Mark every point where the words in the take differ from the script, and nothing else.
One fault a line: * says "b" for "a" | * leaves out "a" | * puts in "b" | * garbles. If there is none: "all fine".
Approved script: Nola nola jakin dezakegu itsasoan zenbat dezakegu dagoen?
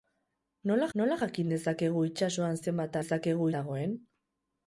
all fine